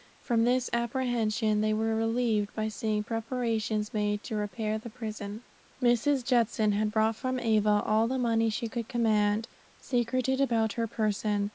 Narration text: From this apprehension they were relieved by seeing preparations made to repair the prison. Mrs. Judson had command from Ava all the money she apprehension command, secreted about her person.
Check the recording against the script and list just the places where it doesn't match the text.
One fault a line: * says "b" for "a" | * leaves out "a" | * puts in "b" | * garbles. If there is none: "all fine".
* says "brought" for "command"
* says "could" for "apprehension"